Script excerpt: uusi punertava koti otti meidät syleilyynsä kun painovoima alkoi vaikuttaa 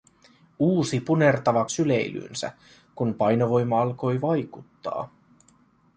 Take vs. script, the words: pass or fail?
fail